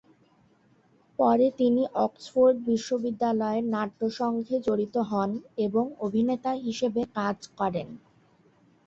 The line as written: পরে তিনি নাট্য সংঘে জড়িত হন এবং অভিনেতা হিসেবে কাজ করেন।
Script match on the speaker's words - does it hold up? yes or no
no